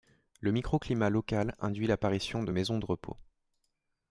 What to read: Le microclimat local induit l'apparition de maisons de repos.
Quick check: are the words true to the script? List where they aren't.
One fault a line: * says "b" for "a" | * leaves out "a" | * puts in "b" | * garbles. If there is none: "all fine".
all fine